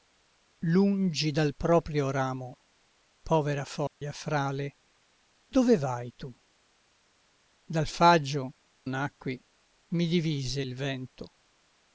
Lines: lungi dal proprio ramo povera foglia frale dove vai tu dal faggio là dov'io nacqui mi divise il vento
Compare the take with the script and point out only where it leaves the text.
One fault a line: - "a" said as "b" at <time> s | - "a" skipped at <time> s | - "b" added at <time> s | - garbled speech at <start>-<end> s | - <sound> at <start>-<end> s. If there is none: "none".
- dropout at 3.9-4.0 s
- "là dov'io" skipped at 8.5 s